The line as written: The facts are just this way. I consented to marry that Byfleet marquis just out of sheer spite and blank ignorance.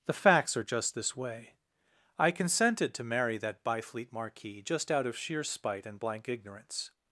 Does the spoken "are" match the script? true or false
true